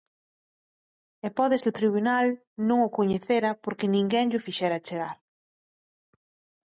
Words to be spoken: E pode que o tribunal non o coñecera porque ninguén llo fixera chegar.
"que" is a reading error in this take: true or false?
false